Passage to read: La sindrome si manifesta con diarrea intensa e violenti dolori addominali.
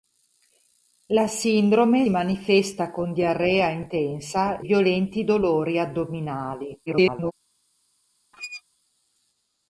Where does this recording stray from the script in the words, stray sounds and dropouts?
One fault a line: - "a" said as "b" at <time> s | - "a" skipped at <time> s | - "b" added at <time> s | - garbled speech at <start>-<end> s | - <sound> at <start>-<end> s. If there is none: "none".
- "si" skipped at 2.1 s
- "e" skipped at 4.6 s
- garbled speech at 6.9-7.3 s
- squeak at 8.3-8.6 s